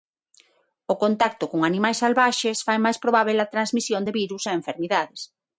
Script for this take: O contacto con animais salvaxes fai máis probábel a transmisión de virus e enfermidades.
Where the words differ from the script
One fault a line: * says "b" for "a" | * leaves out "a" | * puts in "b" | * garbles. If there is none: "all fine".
all fine